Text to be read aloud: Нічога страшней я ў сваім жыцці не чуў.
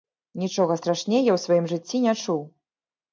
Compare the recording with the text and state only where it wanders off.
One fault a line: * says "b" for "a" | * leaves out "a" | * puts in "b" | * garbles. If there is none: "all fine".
all fine